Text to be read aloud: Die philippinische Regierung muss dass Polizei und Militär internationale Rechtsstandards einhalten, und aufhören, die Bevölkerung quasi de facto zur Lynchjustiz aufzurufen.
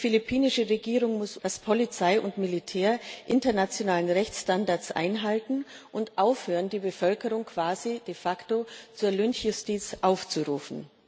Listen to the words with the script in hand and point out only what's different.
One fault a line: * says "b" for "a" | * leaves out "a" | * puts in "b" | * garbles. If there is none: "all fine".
all fine